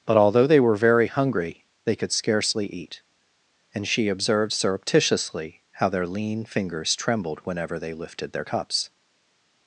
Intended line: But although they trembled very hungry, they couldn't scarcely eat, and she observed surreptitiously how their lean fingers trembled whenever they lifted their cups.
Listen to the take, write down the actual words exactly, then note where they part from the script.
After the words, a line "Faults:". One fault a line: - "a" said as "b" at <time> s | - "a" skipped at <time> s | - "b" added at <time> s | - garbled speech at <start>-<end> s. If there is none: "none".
But although they were very hungry, they could scarcely eat, and she observed surreptitiously how their lean fingers trembled whenever they lifted their cups.
Faults:
- "trembled" said as "were" at 0.6 s
- "couldn't" said as "could" at 2.0 s